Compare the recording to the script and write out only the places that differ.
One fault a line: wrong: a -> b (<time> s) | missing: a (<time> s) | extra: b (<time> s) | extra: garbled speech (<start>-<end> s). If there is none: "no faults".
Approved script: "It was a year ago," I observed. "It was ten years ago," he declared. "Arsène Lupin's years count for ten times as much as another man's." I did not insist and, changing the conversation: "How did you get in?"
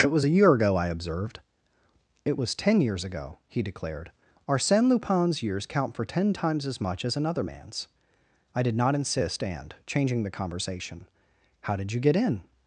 no faults